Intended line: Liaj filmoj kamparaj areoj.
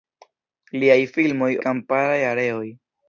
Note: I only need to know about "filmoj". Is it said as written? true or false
true